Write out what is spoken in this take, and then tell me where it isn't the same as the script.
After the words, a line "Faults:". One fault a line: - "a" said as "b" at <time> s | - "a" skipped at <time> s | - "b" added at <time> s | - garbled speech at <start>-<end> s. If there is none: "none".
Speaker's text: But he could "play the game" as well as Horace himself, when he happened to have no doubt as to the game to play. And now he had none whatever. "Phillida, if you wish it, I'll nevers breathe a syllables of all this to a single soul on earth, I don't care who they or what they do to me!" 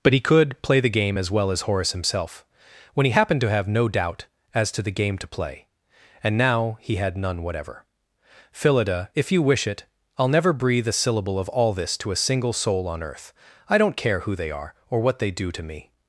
But he could "play the game" as well as Horace himself, when he happened to have no doubt as to the game to play. And now he had none whatever. "Phillida, if you wish it, I'll never breathe a syllable of all this to a single soul on earth, I don't care who they are, or what they do to me!"
Faults:
- "nevers" said as "never" at 10.3 s
- "syllables" said as "syllable" at 10.9 s
- "are" added at 14.5 s